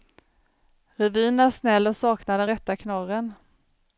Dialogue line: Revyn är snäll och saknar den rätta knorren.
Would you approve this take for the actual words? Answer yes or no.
yes